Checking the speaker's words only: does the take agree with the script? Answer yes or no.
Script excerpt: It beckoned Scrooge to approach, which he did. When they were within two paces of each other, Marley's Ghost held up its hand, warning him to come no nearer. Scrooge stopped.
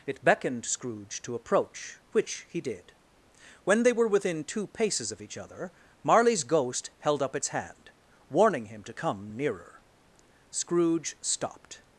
no